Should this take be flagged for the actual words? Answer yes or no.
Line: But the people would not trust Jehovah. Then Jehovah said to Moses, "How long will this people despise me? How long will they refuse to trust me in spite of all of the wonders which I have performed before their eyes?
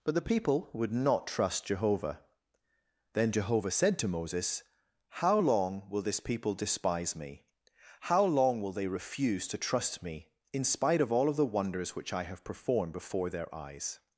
no